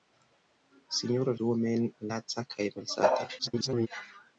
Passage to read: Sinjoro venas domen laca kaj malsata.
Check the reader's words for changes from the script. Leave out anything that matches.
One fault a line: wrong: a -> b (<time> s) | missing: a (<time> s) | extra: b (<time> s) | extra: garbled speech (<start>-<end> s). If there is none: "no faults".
missing: venas (1.4 s)
extra: garbled speech (3.4-3.9 s)